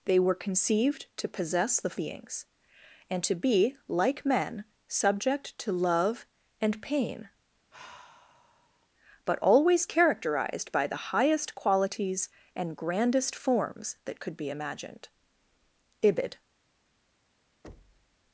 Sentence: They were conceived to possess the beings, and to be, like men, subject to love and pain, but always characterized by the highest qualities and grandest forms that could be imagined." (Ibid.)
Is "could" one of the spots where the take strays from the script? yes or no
no